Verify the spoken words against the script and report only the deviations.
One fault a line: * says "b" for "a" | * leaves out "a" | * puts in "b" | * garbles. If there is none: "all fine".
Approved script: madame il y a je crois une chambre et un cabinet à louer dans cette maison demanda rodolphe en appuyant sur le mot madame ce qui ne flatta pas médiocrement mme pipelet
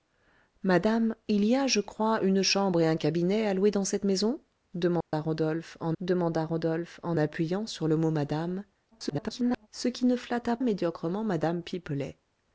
* puts in "demanda rodolphe en"
* garbles
* leaves out "pas"